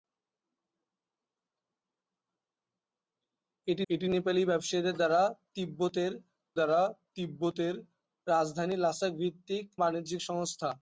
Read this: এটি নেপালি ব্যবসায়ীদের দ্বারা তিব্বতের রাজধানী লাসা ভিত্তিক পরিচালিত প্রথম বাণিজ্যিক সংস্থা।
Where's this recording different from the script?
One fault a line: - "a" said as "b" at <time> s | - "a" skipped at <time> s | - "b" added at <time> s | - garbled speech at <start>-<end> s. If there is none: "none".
- "এটি" added at 3.9 s
- "দ্বারা তিব্বতের" added at 6.5 s
- "পরিচালিত প্রথম" skipped at 9.7 s